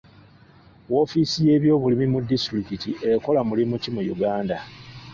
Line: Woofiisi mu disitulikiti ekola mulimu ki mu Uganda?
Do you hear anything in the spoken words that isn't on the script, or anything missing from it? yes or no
yes